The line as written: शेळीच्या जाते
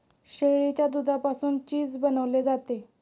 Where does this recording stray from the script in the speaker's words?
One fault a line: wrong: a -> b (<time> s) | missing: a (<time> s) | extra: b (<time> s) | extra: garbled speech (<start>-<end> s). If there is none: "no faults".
extra: दुधापासून चीज बनवले (0.9 s)